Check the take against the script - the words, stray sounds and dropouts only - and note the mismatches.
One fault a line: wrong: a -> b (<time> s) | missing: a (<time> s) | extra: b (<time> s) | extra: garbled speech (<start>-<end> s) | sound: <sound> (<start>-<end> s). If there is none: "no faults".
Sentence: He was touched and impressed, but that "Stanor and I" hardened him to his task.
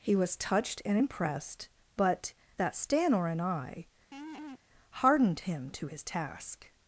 sound: laugh (4.1-4.6 s)